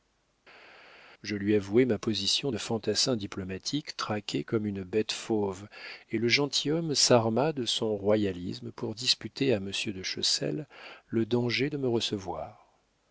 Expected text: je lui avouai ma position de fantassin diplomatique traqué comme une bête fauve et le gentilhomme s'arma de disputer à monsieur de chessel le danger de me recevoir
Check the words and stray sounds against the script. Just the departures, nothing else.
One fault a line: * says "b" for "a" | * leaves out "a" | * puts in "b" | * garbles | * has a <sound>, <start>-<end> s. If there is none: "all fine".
* puts in "son royalisme pour"